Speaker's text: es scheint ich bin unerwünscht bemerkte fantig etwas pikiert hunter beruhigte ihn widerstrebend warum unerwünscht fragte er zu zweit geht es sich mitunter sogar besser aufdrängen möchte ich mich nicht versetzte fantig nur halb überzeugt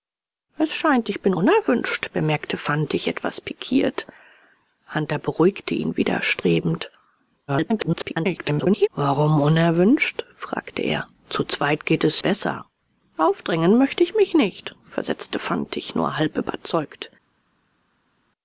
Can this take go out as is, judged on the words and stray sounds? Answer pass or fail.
fail